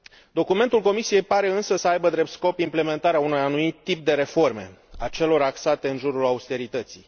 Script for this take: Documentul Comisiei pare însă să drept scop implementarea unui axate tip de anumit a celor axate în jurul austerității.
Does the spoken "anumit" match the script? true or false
false